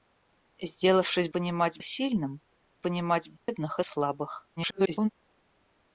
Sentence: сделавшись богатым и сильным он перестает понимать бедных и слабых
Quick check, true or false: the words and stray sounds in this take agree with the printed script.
false